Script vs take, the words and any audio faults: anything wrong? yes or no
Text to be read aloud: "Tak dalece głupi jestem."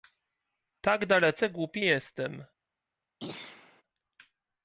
yes